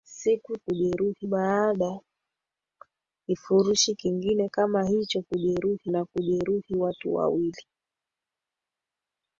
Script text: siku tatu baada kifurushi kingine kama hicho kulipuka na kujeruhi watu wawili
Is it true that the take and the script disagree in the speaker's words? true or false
true